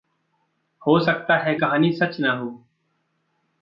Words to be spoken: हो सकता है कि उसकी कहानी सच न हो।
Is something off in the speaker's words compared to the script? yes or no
yes